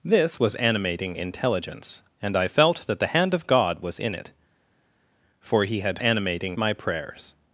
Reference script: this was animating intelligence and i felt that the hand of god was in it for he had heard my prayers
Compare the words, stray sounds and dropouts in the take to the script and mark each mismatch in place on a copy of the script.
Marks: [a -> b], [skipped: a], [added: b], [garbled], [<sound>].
this was animating intelligence and i felt that the hand of god was in it for he had [heard -> animating] my prayers